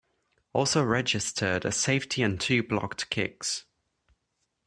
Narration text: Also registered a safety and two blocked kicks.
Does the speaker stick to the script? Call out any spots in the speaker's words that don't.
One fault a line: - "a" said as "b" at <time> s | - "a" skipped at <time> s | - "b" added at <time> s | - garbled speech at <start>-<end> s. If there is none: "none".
none